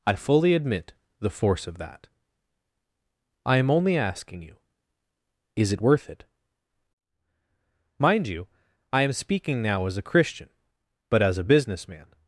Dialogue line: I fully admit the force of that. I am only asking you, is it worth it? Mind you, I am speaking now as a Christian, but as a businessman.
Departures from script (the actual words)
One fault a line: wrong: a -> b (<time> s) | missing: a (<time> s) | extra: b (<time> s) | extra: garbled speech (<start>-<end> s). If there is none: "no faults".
no faults